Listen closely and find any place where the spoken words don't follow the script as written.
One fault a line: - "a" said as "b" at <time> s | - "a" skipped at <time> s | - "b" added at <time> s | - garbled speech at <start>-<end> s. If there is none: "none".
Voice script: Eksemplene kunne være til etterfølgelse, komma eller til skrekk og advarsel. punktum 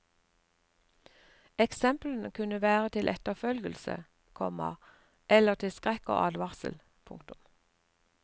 none